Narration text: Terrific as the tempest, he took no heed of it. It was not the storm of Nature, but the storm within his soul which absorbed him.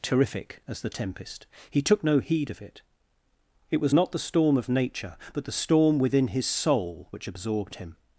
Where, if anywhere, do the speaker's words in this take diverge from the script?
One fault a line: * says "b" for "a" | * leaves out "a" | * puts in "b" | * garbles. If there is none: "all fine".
all fine